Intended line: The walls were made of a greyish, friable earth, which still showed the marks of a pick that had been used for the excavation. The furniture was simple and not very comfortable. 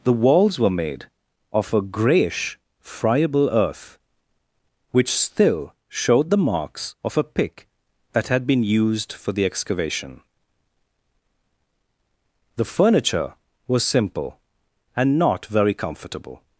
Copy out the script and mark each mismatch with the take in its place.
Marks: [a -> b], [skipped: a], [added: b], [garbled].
The walls were made of a greyish, friable earth, which still showed the marks of a pick that had been used for the excavation. The furniture was simple and not very comfortable.